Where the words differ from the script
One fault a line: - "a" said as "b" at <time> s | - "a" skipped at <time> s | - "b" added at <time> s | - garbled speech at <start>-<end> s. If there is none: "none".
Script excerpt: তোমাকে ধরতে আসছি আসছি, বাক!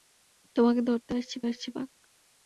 none